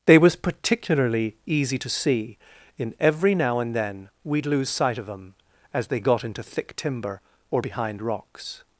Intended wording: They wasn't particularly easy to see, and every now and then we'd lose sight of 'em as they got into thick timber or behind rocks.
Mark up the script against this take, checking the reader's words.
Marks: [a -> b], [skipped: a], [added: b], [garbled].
They [wasn't -> was] particularly easy to see, [and -> in] every now and then we'd lose sight of 'em as they got into thick timber or behind rocks.